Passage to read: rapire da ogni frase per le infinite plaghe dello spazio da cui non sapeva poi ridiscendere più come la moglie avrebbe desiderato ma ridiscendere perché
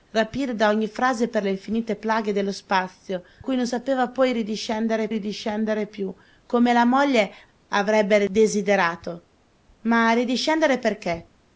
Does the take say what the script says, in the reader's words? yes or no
no